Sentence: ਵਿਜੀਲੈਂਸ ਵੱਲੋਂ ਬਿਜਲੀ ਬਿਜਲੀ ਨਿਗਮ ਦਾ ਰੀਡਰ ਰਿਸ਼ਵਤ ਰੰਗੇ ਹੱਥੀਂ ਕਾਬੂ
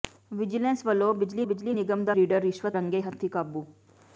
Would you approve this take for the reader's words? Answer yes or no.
yes